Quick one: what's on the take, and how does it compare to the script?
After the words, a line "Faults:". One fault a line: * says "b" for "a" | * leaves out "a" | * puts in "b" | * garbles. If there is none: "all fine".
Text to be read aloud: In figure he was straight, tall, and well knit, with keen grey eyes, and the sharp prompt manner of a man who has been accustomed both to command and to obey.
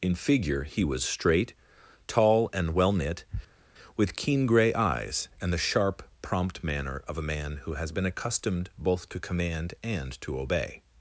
In figure he was straight, tall, and well knit, with keen grey eyes, and the sharp prompt manner of a man who has been accustomed both to command and to obey.
Faults:
all fine